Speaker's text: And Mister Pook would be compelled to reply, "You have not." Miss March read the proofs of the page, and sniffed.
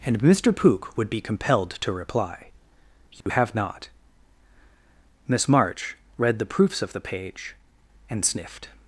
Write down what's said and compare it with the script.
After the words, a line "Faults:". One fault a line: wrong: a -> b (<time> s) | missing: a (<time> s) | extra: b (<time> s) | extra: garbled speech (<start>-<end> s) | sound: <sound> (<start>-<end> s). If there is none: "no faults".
And Mister Pook would be compelled to reply, "You have not." Miss March read the proofs of the page, and sniffed.
Faults:
sound: dropout (3.2-3.3 s)